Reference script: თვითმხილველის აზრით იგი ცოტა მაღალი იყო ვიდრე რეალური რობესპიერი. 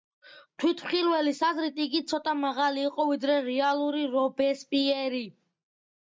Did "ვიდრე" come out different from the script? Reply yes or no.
no